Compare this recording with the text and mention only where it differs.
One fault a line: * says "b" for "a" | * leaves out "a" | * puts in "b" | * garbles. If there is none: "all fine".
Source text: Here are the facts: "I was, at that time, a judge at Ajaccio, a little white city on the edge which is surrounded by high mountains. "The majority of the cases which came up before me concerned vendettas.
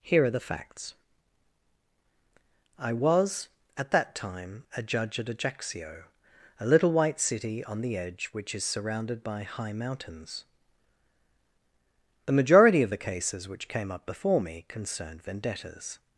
all fine